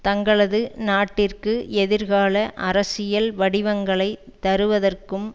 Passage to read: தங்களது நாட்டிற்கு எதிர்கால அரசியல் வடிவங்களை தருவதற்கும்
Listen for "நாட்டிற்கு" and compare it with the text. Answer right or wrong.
right